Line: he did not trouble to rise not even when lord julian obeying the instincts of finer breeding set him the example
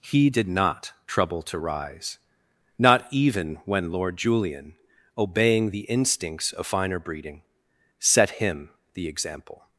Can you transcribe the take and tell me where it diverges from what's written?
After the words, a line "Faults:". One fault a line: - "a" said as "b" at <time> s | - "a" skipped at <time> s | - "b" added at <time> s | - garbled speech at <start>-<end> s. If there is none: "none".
he did not trouble to rise not even when lord julian obeying the instincts of finer breeding set him the example
Faults:
none